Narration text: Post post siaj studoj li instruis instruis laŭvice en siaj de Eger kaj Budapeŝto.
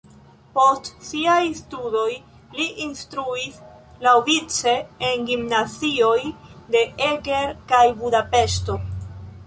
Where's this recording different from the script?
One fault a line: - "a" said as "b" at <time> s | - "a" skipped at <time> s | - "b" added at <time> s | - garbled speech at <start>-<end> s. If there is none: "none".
- "post" skipped at 0.9 s
- "instruis" skipped at 3.6 s
- "siaj" said as "gimnazioj" at 5.3 s